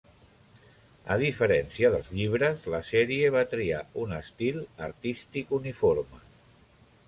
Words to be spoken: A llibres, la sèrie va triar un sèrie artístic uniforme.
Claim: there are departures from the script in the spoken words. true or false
true